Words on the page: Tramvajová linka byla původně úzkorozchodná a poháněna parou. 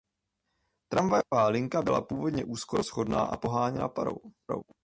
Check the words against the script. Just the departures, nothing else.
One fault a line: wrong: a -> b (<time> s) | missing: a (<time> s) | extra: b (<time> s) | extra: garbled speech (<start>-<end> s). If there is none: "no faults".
no faults